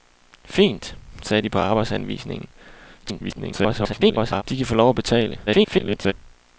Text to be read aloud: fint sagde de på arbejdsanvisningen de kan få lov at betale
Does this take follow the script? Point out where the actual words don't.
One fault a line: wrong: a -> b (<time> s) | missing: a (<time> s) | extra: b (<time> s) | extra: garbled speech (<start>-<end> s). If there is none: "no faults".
extra: garbled speech (3.0-4.4 s)
extra: garbled speech (5.5-6.1 s)